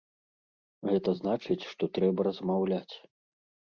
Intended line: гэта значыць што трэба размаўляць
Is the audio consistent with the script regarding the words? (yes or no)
yes